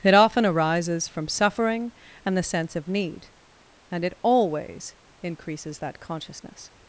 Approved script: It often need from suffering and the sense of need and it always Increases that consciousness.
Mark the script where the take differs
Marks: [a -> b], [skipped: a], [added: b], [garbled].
It often [need -> arises] from suffering and the sense of need and it always Increases that consciousness.